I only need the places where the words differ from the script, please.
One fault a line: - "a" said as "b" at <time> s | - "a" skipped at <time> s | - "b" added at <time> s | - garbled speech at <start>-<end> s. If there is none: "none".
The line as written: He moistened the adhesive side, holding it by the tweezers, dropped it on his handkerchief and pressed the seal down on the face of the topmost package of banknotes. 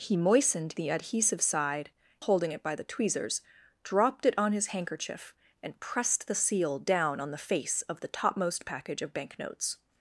none